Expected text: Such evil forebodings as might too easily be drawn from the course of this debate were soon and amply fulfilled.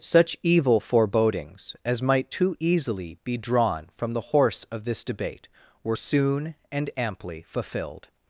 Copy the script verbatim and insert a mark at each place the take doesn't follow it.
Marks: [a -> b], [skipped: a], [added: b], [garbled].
Such evil forebodings as might too easily be drawn from the [course -> horse] of this debate were soon and amply fulfilled.